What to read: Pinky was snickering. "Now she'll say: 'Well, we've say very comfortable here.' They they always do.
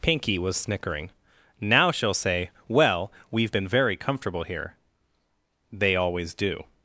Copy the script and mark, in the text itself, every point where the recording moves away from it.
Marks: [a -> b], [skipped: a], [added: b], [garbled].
Pinky was snickering. "Now she'll say: 'Well, we've [say -> been] very comfortable here.' They [skipped: they] always do.